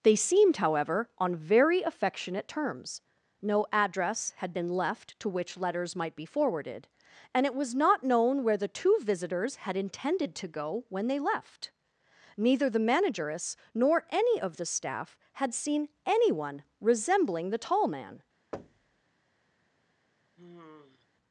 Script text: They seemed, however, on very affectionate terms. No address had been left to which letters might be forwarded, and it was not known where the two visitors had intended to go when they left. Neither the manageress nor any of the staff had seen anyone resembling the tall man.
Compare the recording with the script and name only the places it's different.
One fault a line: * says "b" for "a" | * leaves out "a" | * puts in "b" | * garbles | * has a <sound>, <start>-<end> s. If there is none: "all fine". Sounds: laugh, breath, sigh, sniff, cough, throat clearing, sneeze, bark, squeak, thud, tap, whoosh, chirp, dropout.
* has a thud, 18.5-19.0 s
* has a sigh, 20.4-21.1 s